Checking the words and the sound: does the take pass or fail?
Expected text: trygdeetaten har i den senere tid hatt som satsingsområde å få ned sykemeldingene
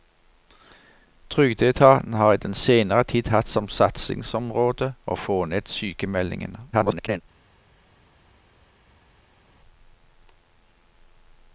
fail